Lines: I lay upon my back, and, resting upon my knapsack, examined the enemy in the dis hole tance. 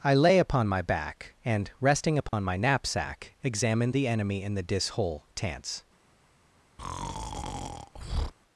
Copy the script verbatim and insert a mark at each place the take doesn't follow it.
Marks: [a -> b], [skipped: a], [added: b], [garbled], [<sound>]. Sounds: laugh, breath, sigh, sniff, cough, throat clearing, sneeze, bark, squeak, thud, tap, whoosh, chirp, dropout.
I lay upon my back, and, resting upon [dropout] my knapsack, examined the enemy in the dis hole tance. [breath]